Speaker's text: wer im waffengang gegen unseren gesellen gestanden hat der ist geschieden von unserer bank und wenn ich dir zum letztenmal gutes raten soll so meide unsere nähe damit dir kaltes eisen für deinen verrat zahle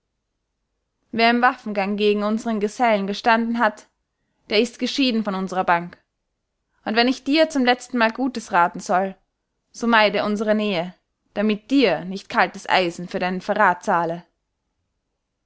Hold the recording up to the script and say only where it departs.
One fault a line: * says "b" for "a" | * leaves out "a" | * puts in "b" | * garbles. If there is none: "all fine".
* puts in "nicht"